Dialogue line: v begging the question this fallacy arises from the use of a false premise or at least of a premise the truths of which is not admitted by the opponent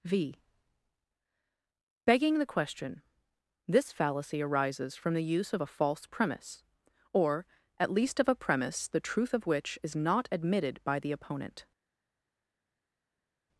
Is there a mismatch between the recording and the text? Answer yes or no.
yes